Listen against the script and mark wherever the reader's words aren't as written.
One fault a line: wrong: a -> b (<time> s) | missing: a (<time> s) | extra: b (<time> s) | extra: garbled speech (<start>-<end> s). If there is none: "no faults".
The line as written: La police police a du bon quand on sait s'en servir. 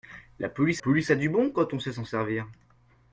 no faults